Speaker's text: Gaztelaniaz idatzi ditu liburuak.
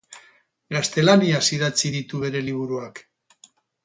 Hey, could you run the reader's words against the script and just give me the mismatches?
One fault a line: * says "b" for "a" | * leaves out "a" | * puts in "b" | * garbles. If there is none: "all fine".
* puts in "bere"